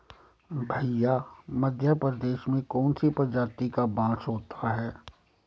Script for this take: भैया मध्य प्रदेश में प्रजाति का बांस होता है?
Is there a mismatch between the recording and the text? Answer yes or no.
yes